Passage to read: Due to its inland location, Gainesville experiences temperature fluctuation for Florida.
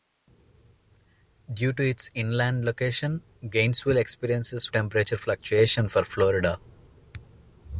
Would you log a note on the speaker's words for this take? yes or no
no